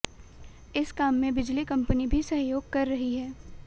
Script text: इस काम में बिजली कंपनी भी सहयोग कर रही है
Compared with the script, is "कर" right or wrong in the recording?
right